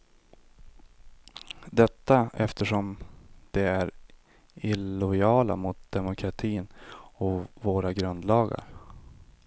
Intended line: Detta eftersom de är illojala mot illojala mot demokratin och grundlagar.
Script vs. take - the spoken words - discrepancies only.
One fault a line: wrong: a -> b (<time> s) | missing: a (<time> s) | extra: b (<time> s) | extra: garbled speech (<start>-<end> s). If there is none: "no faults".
missing: illojala mot (5.8 s)
extra: våra (7.5 s)